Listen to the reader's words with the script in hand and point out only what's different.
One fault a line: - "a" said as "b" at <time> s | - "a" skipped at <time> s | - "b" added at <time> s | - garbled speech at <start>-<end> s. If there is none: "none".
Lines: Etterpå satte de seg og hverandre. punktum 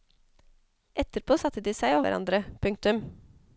none